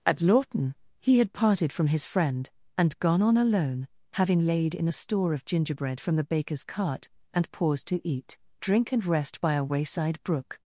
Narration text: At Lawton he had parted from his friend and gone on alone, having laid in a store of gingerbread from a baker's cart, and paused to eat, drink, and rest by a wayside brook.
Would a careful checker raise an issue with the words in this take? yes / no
yes